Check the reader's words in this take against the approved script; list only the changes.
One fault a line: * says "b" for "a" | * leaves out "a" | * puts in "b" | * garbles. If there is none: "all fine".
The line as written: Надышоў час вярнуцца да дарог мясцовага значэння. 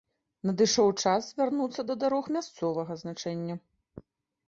all fine